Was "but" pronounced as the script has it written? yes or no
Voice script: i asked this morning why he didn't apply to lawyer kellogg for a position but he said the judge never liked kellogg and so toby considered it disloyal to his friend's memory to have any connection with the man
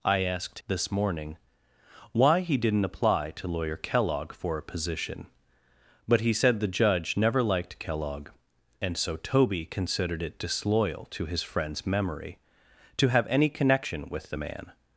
yes